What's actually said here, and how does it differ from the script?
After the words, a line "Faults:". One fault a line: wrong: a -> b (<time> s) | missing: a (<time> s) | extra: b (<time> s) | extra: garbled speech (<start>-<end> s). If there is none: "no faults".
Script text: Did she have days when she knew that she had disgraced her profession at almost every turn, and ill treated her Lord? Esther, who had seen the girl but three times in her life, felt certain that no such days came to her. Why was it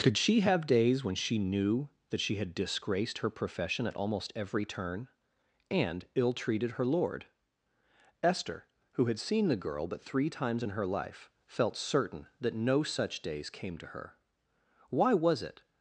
Could she have days when she knew that she had disgraced her profession at almost every turn, and ill treated her Lord? Esther, who had seen the girl but three times in her life, felt certain that no such days came to her. Why was it
Faults:
wrong: Did -> Could (0.0 s)